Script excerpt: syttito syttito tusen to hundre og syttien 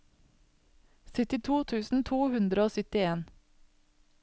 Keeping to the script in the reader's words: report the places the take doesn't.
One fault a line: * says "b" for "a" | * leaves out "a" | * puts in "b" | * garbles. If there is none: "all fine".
* leaves out "syttito"